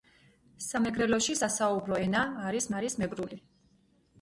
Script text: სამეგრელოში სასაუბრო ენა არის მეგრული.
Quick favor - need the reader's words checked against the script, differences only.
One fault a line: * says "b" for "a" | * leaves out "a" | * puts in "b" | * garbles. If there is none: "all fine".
* puts in "არის"